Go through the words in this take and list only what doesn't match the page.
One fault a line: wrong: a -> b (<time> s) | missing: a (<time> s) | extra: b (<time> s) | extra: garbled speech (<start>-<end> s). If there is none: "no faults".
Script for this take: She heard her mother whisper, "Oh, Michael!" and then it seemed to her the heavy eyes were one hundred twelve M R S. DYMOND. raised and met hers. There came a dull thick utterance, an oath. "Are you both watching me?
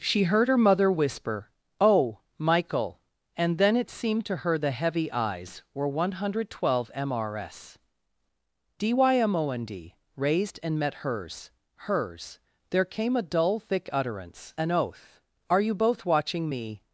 extra: hers (11.8 s)